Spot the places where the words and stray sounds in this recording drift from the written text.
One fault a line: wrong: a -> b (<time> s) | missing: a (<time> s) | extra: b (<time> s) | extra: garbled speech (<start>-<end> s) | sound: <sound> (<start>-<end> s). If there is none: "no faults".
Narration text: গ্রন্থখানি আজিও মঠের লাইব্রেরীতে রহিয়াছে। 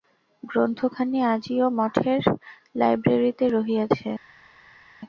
no faults